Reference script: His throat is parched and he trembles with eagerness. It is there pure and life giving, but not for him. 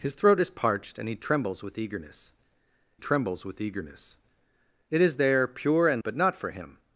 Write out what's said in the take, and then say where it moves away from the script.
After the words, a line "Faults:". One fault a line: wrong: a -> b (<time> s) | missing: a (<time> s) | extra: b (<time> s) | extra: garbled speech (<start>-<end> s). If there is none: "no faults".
His throat is parched and he trembles with eagerness trembles with eagerness. It is there pure and but not for him.
Faults:
extra: trembles with eagerness (3.0 s)
missing: life giving (6.0 s)